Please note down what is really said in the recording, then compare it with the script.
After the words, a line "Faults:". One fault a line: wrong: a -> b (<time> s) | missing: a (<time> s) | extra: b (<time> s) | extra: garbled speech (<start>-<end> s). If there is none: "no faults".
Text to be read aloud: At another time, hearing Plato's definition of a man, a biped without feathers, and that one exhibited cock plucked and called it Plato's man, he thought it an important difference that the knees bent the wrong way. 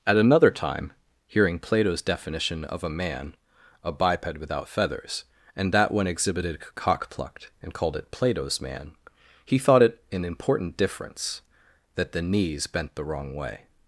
At another time, hearing Plato's definition of a man, a biped without feathers, and that one exhibited cock plucked and called it Plato's man, he thought it an important difference that the knees bent the wrong way.
Faults:
no faults